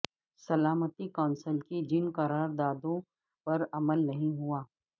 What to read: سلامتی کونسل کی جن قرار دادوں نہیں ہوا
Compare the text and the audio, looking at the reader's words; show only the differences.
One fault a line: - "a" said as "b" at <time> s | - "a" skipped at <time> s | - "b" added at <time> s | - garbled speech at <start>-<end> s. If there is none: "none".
- "پر عمل" added at 3.5 s